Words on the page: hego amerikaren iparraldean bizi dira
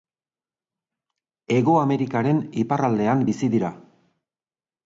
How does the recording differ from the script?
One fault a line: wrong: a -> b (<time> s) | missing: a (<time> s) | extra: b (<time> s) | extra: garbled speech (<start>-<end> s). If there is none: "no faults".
no faults